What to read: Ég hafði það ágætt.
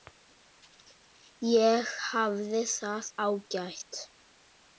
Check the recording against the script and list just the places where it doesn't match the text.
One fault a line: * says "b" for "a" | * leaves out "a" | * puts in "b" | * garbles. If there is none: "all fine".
all fine